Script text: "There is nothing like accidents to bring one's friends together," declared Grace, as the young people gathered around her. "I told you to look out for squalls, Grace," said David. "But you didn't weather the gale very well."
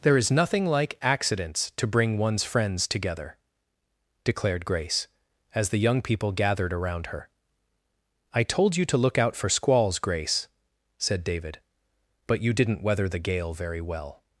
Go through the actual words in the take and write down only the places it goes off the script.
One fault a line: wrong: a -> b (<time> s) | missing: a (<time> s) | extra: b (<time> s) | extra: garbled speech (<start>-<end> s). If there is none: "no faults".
no faults